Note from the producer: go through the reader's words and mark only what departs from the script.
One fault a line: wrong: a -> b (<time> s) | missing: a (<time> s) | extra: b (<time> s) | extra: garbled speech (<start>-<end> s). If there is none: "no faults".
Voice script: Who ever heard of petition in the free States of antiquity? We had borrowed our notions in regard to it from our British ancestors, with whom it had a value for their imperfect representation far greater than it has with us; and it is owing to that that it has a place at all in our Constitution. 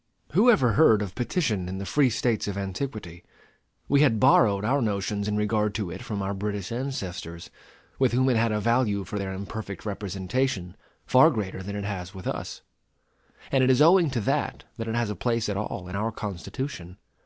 no faults